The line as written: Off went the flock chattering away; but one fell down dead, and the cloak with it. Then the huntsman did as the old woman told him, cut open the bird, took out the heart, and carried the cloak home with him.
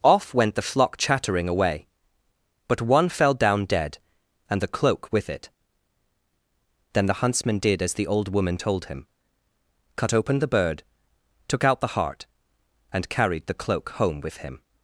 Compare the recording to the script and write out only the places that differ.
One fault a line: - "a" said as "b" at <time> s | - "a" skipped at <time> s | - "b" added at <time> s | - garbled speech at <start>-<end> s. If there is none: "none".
none